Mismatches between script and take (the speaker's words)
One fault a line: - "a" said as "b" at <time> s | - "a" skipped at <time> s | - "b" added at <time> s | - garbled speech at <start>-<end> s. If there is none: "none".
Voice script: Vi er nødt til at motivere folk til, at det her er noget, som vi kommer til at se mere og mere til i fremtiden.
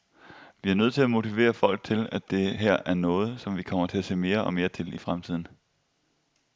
none